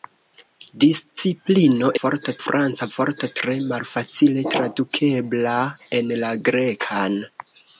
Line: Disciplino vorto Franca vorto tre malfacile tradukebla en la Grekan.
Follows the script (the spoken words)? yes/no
yes